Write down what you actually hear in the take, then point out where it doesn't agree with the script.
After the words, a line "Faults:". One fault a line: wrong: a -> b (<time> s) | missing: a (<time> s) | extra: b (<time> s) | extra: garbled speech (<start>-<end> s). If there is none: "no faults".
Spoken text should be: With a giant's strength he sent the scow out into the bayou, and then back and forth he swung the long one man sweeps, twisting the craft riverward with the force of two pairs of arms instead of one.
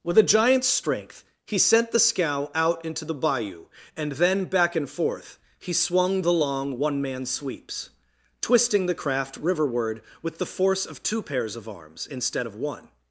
With a giant's strength he sent the scow out into the bayou, and then back and forth he swung the long one man sweeps, twisting the craft riverward with the force of two pairs of arms instead of one.
Faults:
no faults